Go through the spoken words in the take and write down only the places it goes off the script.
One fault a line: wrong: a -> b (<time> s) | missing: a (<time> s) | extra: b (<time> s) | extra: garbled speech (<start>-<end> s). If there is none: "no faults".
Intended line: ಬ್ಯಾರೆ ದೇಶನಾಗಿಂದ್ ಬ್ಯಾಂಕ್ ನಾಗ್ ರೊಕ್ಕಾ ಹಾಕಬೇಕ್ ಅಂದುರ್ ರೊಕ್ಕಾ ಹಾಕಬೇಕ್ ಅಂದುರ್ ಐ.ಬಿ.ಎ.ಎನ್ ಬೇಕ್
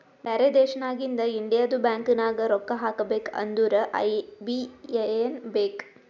extra: ಇಂಡಿಯದು (1.3 s)
missing: ರೊಕ್ಕಾ ಹಾಕಬೇಕ್ ಅಂದುರ್ (3.8 s)